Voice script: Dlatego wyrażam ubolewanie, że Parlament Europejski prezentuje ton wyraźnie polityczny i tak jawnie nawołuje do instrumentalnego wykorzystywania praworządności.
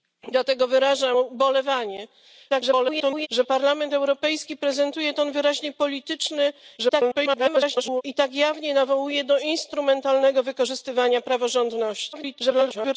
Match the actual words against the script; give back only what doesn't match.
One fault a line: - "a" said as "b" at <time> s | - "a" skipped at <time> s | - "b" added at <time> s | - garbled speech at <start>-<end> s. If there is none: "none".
- garbled speech at 2.5-3.3 s
- garbled speech at 6.8-8.0 s
- garbled speech at 12.1-13.0 s